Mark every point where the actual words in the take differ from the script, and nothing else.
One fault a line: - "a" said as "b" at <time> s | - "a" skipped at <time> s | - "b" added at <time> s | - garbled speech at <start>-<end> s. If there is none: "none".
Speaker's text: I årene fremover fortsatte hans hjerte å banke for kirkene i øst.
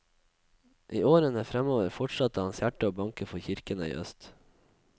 none